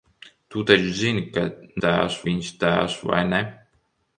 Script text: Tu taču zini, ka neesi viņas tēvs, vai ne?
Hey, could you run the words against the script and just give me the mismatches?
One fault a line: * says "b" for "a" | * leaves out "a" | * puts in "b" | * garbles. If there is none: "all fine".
* says "tēvs" for "neesi"